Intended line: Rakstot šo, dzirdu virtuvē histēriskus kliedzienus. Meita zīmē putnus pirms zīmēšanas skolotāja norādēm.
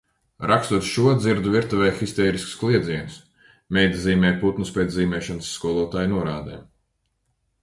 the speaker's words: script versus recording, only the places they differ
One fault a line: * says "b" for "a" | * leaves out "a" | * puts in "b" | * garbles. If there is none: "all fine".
* says "pēc" for "pirms"